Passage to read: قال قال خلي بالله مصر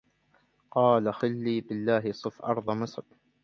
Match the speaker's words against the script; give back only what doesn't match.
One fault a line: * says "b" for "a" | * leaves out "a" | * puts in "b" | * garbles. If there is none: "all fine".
* leaves out "قال"
* puts in "صف أرض"